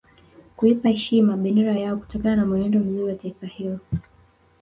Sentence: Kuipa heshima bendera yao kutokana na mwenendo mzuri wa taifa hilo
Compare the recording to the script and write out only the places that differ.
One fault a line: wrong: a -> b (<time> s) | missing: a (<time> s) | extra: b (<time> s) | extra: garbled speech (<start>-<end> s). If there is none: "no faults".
no faults